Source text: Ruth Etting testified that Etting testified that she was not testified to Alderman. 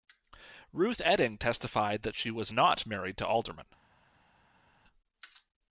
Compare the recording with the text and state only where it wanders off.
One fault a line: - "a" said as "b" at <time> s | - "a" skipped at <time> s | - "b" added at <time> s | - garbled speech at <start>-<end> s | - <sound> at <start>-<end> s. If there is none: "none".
- "Etting testified that" skipped at 2.1 s
- "testified" said as "married" at 2.9 s